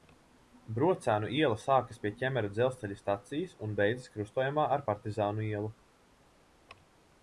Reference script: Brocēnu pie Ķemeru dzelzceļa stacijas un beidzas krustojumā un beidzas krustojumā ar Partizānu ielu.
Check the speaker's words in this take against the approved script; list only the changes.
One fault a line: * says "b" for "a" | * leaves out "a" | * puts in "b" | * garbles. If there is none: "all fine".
* puts in "iela sākas"
* leaves out "un beidzas krustojumā"